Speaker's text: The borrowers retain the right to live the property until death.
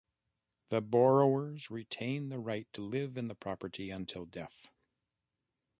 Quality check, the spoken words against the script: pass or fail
fail